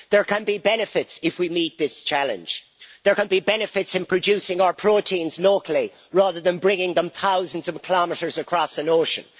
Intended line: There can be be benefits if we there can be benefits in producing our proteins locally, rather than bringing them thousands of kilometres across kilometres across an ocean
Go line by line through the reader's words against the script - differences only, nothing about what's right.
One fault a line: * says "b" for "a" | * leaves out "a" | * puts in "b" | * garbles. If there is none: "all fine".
* leaves out "be"
* puts in "meet this challenge"
* leaves out "kilometres across"